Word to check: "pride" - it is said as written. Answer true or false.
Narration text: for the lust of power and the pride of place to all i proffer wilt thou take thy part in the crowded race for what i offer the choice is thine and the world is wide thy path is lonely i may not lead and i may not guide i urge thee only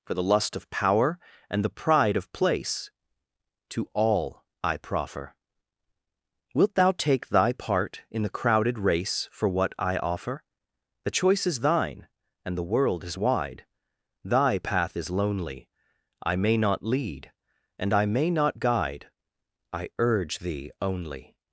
true